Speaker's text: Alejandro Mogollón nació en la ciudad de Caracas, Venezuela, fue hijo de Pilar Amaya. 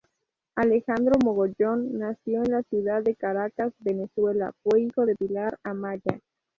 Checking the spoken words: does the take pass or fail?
pass